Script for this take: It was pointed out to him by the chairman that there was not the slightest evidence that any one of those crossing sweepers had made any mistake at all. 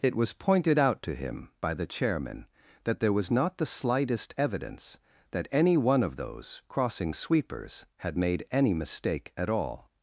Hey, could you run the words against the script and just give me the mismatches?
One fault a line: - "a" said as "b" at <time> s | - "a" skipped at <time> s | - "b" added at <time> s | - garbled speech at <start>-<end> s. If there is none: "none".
none